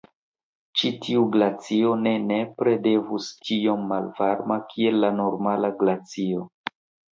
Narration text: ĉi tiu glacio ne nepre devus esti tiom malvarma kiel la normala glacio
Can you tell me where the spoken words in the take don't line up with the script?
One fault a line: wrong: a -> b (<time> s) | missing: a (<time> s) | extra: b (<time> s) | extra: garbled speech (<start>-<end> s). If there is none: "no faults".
missing: esti (3.3 s)